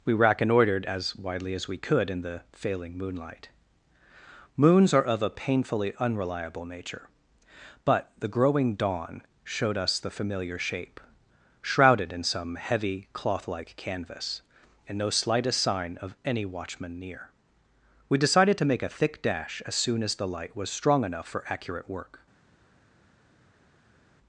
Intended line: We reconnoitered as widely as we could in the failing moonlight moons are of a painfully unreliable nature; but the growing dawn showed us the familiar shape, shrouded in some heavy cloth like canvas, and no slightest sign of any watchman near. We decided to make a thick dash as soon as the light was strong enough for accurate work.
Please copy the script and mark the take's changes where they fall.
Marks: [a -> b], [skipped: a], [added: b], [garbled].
We reconnoitered as widely as we could in the failing moonlight moons are of a painfully unreliable nature; but the growing dawn showed us the familiar shape, shrouded in some heavy cloth like canvas, and no slightest sign of any watchman near. We decided to make a thick dash as soon as the light was strong enough for accurate work.